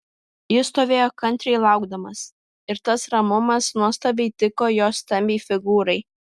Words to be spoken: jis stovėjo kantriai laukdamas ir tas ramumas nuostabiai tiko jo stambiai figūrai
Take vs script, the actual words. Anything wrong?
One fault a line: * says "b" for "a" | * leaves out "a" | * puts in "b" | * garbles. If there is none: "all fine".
all fine